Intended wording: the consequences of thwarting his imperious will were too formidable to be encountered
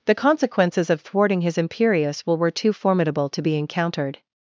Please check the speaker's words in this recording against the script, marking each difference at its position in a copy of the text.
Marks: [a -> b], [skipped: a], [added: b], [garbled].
the consequences of thwarting his imperious will were too formidable to be encountered